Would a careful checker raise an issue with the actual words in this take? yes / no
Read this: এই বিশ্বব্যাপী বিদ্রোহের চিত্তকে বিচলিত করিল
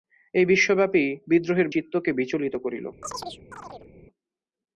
no